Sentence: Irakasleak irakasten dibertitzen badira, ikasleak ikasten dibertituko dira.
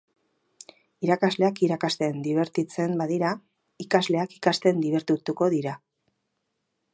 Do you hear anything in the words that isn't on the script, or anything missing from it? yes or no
no